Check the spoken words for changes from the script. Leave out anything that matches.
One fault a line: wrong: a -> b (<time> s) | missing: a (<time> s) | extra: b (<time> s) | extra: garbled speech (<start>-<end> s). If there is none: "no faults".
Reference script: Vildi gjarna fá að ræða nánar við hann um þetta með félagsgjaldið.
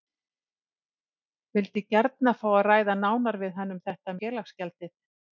missing: með (4.2 s)